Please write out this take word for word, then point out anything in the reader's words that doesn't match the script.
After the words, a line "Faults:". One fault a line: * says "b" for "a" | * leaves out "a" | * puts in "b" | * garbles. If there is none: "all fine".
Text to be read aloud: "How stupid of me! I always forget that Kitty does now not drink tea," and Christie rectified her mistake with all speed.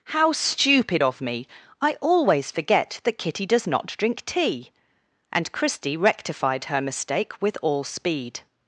"How stupid of me! I always forget that Kitty does not drink tea," and Christie rectified her mistake with all speed.
Faults:
* leaves out "now"